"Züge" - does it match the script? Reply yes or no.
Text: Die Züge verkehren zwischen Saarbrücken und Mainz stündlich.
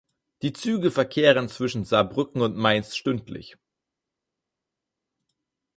yes